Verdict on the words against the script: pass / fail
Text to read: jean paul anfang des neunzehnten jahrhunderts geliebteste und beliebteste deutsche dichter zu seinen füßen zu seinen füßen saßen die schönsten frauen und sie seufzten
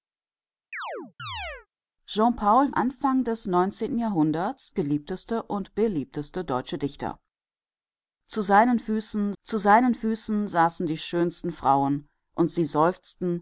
pass